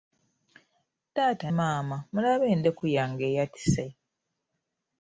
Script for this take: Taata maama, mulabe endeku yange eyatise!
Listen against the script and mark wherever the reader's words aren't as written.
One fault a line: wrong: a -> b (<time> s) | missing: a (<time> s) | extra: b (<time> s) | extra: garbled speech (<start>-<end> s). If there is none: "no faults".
no faults